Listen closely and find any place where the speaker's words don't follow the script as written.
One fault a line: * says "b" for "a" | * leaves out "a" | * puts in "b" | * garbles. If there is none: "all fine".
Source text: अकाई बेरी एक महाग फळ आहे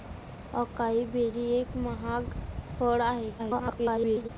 * garbles